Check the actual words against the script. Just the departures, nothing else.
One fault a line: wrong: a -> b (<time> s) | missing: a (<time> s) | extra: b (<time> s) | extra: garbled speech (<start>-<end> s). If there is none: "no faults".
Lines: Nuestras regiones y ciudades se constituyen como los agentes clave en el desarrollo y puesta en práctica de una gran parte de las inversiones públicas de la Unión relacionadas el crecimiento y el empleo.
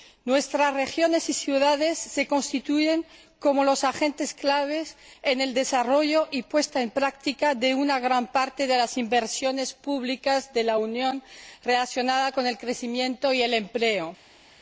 extra: con (12.3 s)